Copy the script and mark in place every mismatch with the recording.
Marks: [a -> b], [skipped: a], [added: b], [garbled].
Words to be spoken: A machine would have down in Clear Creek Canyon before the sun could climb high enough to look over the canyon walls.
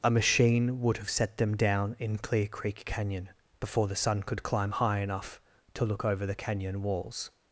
A machine would have [added: set them] down in Clear Creek Canyon before the sun could climb high enough to look over the canyon walls.